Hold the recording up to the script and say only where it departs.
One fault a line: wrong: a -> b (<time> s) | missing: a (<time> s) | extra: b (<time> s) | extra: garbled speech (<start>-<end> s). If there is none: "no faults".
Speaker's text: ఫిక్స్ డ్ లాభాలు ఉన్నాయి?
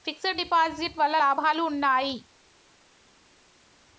extra: డిపాజిట్ వల్ల (0.3 s)